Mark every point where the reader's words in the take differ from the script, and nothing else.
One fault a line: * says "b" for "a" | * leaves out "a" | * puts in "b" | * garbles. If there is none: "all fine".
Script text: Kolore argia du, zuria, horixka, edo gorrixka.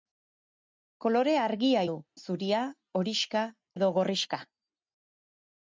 all fine